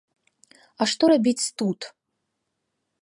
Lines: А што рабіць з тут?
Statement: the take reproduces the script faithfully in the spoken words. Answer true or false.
true